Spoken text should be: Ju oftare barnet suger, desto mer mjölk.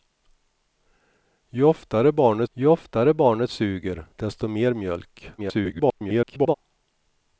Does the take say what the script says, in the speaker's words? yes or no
no